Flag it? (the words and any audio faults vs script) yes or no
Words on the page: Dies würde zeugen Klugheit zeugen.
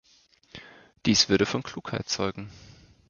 yes